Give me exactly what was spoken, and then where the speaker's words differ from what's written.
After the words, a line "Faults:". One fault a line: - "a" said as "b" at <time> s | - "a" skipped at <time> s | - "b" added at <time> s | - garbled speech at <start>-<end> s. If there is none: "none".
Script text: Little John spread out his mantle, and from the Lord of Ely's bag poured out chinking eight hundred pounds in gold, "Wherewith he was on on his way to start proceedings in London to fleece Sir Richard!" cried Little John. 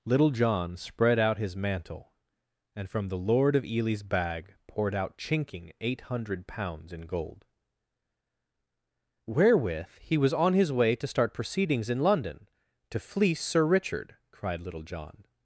Little John spread out his mantle, and from the Lord of Ely's bag poured out chinking eight hundred pounds in gold, "Wherewith he was on his way to start proceedings in London to fleece Sir Richard!" cried Little John.
Faults:
- "on" skipped at 10.5 s